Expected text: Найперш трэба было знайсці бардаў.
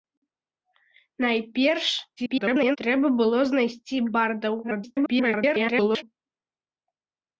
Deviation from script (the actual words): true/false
true